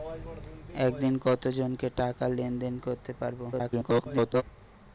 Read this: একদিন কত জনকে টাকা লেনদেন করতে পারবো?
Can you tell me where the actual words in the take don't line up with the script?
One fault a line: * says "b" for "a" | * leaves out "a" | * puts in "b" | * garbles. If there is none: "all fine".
* garbles